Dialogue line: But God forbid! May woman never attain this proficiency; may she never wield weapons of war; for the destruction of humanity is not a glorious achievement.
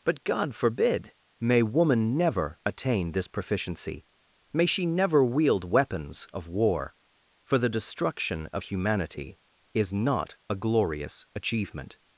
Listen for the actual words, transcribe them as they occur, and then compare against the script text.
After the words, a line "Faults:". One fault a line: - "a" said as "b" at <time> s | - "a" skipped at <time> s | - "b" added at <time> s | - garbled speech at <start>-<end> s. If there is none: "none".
But God forbid! May woman never attain this proficiency; may she never wield weapons of war; for the destruction of humanity is not a glorious achievement.
Faults:
none